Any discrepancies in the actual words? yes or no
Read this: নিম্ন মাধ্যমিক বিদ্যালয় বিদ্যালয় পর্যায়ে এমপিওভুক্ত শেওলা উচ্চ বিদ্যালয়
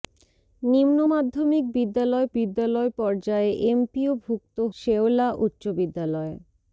no